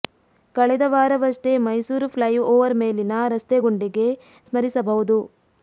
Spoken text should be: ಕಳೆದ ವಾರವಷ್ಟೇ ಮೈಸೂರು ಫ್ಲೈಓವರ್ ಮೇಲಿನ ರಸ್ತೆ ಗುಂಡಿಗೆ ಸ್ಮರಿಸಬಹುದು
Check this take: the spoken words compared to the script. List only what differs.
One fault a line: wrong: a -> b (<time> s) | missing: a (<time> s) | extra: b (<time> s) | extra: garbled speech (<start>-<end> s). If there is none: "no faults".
no faults